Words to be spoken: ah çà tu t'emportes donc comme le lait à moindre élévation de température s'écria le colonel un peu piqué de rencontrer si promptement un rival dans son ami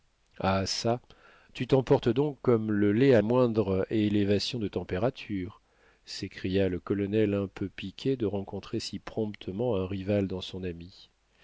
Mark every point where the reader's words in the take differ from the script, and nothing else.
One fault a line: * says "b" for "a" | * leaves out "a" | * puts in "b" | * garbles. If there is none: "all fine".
all fine